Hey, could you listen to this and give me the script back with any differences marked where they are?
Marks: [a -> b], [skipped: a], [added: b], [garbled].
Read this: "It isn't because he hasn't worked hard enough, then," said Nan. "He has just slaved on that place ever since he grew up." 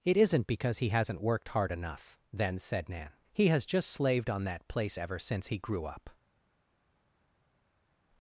"It isn't because he hasn't worked hard enough, then," said Nan. "He has just slaved on that place ever since he grew up."